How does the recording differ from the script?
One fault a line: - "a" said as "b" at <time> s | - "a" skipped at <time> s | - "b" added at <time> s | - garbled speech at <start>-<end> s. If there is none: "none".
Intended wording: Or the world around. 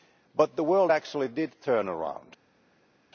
- "Or" said as "But" at 0.3 s
- "actually did turn" added at 0.9 s